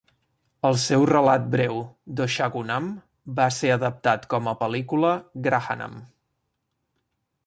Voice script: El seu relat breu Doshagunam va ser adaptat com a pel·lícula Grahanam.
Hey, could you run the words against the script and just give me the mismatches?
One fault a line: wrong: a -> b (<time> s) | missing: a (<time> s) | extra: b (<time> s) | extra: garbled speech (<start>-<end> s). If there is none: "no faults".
no faults